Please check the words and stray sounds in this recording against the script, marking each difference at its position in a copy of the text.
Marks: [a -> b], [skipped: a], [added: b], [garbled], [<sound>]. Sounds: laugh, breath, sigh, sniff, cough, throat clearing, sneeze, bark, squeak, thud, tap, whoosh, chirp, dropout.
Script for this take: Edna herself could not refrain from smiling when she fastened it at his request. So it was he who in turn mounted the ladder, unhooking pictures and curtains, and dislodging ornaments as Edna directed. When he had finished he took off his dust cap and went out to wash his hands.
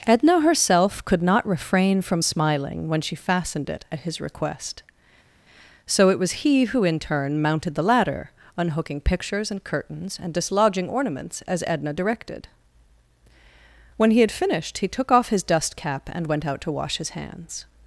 Edna herself could not refrain from smiling when she fastened it at his request. So it was he who in turn mounted the ladder, unhooking pictures and curtains, and dislodging ornaments as Edna directed. When he had finished he took off his dust cap and went out to wash his hands.